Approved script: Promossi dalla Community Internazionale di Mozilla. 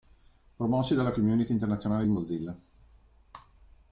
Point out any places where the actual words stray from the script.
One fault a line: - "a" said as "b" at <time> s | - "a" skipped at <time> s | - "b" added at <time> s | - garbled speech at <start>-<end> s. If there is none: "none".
none